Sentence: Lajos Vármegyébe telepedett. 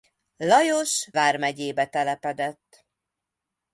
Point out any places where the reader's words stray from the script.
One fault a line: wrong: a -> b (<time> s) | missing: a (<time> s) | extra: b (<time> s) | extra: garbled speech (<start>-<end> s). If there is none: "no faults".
no faults